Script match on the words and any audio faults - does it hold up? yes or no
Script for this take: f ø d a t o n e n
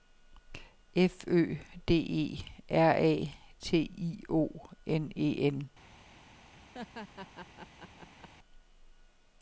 no